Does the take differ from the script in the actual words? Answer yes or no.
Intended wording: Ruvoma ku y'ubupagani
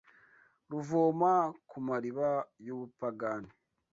yes